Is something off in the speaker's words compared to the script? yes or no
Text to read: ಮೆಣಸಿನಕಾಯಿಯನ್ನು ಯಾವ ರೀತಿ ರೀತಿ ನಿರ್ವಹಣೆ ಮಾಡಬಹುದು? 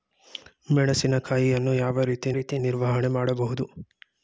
no